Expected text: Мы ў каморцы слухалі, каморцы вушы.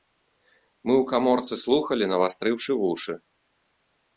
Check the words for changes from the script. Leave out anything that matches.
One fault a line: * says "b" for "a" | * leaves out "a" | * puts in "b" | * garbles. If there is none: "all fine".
* says "навастрыўшы" for "каморцы"